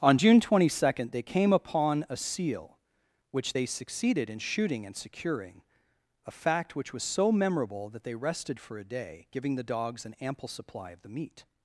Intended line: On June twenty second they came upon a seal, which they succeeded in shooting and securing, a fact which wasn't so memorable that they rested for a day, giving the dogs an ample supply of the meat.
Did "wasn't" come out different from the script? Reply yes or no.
yes